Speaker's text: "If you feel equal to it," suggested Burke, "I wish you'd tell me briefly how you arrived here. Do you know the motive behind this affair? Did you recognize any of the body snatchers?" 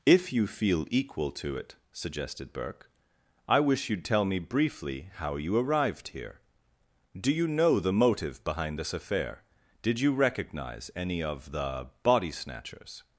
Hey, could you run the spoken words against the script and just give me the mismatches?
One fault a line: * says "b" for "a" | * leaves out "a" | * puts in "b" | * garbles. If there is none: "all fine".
all fine